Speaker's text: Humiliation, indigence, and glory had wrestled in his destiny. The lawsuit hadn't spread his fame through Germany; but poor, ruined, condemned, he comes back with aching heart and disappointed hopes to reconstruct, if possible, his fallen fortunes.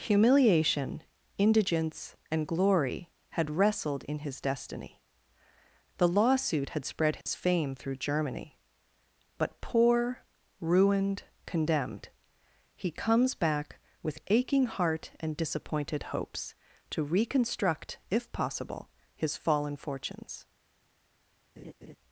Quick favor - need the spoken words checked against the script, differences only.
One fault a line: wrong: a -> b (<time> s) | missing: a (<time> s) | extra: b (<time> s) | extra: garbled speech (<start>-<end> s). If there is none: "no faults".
wrong: hadn't -> had (6.7 s)